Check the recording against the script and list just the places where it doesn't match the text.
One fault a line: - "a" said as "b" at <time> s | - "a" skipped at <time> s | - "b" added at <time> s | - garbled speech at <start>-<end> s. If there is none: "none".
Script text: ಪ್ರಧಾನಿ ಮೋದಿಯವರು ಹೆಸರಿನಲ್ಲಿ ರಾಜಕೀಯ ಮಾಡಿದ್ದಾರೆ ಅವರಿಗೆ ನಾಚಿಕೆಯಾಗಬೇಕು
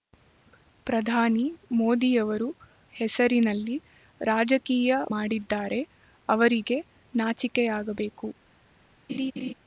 none